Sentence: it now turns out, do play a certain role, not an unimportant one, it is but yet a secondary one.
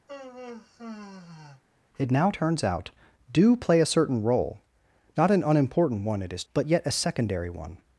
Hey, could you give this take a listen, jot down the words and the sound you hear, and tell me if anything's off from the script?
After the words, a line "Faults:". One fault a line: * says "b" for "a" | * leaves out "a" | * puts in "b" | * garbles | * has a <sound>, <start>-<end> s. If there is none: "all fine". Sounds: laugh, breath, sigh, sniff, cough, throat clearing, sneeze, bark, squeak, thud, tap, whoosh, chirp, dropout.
it now turns out, do play a certain role, not an unimportant one, it is but yet a secondary one.
Faults:
* has a sigh, 0.1-1.6 s